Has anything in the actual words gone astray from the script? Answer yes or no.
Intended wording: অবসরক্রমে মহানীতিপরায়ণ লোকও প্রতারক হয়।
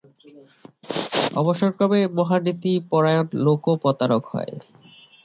no